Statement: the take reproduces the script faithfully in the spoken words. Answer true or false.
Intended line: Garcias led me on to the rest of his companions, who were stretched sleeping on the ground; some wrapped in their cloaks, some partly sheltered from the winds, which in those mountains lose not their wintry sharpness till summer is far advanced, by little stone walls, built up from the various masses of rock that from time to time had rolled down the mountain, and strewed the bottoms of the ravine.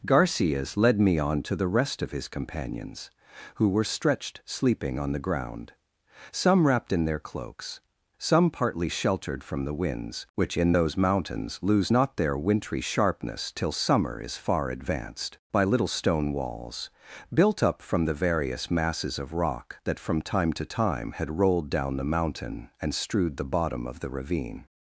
false